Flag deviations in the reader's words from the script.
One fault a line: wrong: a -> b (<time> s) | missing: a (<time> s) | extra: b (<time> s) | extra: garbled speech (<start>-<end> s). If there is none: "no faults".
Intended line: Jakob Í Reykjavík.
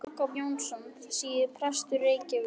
extra: Jónsson síðar prestur (0.4 s)